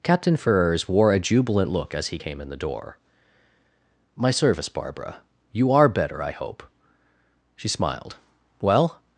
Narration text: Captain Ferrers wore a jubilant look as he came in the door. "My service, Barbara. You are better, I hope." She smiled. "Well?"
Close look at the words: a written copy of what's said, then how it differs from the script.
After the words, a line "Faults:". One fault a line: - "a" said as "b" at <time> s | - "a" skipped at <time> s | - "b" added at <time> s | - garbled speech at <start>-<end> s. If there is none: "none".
Captain Ferrers wore a jubilant look as he came in the door. "My service, Barbara. You are better, I hope." She smiled. "Well?"
Faults:
none